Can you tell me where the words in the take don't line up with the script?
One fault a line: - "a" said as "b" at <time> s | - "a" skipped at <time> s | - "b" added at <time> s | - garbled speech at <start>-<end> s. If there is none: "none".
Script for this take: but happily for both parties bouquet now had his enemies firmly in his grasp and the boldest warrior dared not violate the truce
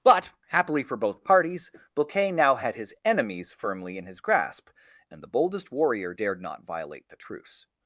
none